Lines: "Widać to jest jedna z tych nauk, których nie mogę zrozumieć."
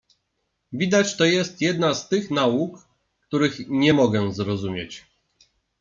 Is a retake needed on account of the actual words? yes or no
no